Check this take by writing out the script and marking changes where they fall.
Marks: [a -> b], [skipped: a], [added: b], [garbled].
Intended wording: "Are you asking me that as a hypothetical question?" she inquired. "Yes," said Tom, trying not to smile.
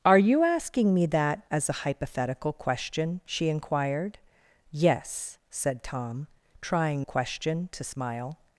"Are you asking me that as a hypothetical question?" she inquired. "Yes," said Tom, trying [not -> question] to smile.